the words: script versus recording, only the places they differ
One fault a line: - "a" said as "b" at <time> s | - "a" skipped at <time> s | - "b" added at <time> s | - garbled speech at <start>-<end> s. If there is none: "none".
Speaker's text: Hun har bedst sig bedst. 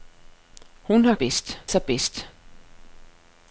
none